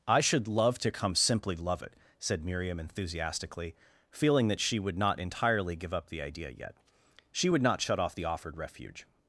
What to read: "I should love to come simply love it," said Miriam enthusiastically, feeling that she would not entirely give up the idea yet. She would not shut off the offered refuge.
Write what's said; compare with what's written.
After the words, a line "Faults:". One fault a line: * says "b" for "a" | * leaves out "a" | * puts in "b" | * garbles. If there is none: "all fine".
"I should love to come simply love it," said Miriam enthusiastically, feeling that she would not entirely give up the idea yet. She would not shut off the offered refuge.
Faults:
all fine